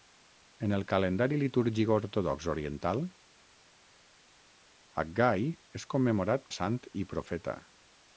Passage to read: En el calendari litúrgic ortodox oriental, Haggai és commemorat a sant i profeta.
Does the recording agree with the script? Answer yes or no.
yes